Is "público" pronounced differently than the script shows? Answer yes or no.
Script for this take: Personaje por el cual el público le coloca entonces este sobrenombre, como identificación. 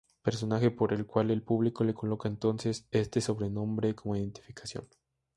no